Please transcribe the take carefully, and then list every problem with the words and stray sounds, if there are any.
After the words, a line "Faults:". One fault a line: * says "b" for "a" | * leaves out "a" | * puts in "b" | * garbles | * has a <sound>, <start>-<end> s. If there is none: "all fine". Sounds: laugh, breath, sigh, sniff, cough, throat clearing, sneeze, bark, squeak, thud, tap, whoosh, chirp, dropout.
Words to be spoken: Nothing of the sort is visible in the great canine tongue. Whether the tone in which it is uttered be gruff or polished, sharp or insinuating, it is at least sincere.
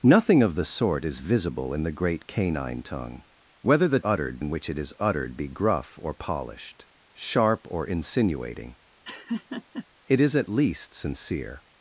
Nothing of the sort is visible in the great canine tongue. Whether the uttered in which it is uttered be gruff or polished, sharp or insinuating, it is at least sincere.
Faults:
* says "uttered" for "tone"
* has a laugh, 9.0-9.9 s